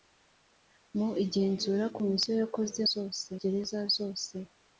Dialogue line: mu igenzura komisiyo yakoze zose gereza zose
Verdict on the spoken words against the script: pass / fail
pass